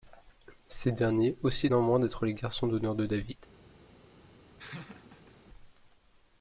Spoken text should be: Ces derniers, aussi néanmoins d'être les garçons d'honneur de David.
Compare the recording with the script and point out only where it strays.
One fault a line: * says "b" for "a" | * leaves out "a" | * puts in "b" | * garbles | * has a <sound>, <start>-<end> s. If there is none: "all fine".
* has a laugh, 4.6-5.4 s